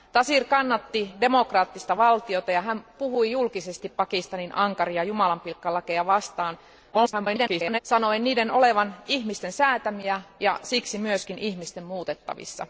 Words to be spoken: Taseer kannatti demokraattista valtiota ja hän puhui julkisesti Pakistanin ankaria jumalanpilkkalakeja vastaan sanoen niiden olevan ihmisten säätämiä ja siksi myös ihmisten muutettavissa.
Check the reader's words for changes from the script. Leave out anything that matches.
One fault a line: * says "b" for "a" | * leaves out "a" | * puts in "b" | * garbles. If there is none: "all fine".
* garbles